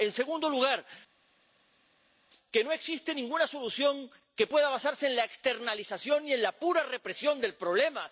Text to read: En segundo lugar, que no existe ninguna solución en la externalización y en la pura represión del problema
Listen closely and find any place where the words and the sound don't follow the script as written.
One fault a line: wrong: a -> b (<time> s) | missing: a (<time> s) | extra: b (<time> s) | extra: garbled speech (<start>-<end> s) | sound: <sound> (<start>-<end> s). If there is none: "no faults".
extra: que pueda basarse (4.3 s)